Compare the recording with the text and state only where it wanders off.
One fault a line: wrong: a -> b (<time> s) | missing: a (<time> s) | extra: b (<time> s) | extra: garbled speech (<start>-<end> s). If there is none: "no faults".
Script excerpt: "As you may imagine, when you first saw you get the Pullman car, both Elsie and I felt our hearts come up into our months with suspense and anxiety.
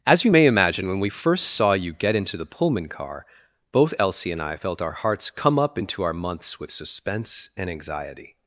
wrong: you -> we (1.0 s)
extra: into (2.2 s)